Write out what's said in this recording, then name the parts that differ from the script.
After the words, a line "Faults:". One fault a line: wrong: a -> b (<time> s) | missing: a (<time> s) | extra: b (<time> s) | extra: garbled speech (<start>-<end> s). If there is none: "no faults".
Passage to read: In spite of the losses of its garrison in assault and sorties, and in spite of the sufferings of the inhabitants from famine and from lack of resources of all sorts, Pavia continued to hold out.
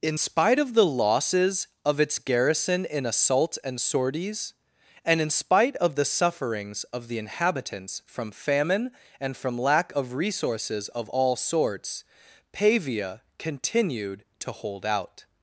In spite of the losses of its garrison in assault and sorties, and in spite of the sufferings of the inhabitants from famine and from lack of resources of all sorts, Pavia continued to hold out.
Faults:
no faults